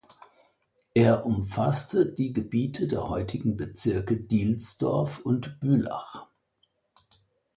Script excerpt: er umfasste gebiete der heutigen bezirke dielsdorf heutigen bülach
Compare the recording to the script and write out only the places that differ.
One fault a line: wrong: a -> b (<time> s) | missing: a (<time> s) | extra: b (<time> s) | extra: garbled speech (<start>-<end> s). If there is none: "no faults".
extra: die (2.1 s)
wrong: heutigen -> und (5.2 s)